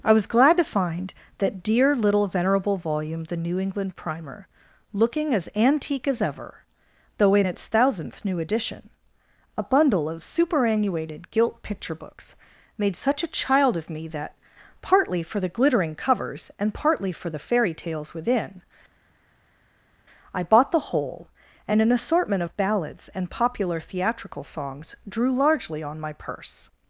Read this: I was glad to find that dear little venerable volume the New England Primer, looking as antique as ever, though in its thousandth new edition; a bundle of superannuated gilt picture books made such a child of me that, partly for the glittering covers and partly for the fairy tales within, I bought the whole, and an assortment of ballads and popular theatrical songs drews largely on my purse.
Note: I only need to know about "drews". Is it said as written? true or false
false